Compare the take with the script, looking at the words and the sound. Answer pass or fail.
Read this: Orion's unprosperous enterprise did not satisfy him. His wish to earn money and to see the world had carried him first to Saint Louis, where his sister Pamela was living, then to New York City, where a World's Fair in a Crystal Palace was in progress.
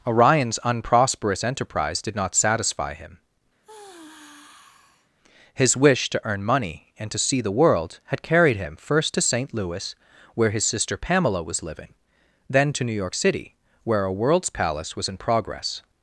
fail